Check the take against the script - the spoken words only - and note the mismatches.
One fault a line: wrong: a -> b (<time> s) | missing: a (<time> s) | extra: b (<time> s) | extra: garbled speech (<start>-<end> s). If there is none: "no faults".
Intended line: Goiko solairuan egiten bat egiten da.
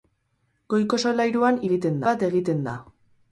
no faults